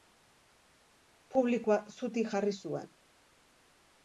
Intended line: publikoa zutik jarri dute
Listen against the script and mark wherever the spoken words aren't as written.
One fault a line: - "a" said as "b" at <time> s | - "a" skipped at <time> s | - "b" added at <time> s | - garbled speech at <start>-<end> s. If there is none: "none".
- "dute" said as "zuen" at 2.7 s